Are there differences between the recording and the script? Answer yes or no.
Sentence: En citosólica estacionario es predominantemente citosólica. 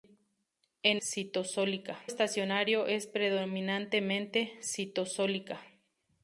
no